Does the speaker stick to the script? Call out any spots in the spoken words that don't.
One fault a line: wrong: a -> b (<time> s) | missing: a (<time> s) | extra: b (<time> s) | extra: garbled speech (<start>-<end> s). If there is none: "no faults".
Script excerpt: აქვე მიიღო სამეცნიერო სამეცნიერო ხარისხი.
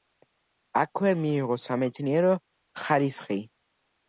missing: სამეცნიერო (2.3 s)